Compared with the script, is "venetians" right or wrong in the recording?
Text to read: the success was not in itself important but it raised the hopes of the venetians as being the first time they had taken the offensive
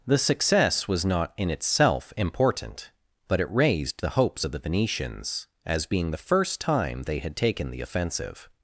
right